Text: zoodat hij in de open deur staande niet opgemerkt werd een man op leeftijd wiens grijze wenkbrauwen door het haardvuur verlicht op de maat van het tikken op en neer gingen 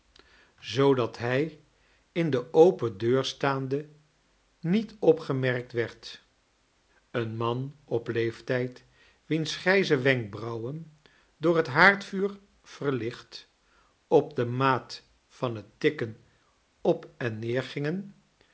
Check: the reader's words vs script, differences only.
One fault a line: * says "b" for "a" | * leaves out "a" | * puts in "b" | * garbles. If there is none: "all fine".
all fine